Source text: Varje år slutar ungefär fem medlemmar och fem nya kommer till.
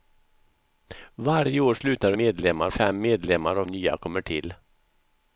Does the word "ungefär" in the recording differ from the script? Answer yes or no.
yes